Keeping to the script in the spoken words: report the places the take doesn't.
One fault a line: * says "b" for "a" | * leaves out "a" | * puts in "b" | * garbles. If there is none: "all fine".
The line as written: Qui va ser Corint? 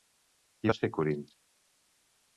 all fine